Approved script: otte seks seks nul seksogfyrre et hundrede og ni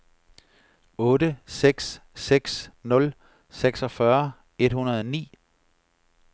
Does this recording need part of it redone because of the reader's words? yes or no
no